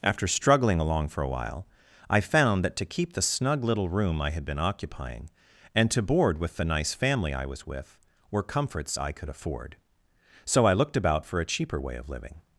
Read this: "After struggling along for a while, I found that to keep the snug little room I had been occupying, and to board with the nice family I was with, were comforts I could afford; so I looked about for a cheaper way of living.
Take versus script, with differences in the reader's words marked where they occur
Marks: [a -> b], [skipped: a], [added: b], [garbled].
"After struggling along for a while, I found that to keep the snug little room I had been occupying, and to board with the nice family I was with, were comforts I could afford; so I looked about for a cheaper way of living.